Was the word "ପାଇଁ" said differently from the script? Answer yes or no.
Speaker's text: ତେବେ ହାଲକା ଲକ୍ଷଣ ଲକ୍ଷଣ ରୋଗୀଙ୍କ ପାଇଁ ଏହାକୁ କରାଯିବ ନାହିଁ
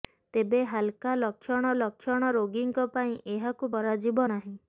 no